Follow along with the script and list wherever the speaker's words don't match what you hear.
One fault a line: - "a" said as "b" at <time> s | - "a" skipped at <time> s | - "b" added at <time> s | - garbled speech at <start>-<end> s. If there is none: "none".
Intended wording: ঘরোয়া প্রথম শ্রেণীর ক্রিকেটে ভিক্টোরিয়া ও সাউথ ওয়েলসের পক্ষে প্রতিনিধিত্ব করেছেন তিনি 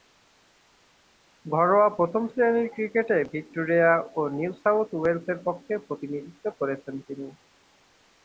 - "নিউ" added at 4.4 s